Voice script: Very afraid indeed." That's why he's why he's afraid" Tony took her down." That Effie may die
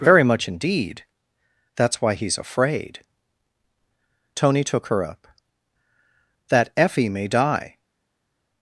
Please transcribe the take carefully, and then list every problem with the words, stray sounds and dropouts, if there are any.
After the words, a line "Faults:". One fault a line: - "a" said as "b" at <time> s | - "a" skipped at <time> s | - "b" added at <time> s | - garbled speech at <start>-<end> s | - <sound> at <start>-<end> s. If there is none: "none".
Very much indeed." That's why he's afraid" Tony took her up." That Effie may die
Faults:
- "afraid" said as "much" at 0.2 s
- "why he's" skipped at 2.4 s
- "down" said as "up" at 5.0 s